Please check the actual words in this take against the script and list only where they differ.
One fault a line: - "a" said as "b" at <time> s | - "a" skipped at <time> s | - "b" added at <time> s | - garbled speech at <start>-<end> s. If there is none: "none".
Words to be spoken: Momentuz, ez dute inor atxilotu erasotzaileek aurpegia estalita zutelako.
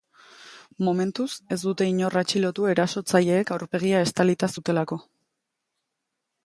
none